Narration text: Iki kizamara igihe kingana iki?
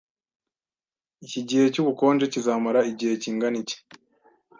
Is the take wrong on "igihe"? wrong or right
right